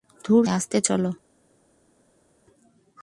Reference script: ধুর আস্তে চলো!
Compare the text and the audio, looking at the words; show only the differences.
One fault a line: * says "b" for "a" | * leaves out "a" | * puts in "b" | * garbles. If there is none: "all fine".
all fine